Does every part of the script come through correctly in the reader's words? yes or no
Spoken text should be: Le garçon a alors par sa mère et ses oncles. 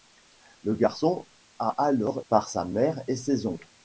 yes